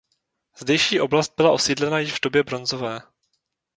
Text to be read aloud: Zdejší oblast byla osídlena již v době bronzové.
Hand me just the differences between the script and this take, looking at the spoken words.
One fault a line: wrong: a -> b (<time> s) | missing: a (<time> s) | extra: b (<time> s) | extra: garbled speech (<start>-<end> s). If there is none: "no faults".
no faults